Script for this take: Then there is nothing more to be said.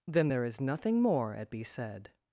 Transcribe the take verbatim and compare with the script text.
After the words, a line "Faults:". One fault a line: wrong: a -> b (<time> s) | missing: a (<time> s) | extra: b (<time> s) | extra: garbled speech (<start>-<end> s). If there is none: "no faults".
Then there is nothing more at be said.
Faults:
wrong: to -> at (1.3 s)